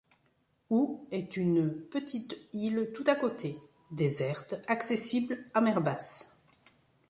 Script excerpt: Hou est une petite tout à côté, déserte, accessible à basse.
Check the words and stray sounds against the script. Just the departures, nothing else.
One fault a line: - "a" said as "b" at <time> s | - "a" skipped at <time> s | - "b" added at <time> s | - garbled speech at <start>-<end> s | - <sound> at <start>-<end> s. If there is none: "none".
- "île" added at 2.5 s
- "mer" added at 5.6 s